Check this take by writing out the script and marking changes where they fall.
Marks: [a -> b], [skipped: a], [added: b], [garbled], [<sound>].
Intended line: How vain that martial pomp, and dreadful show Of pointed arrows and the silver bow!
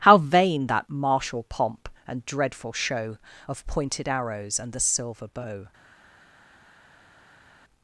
How vain that martial pomp, and dreadful show Of pointed arrows and the silver bow!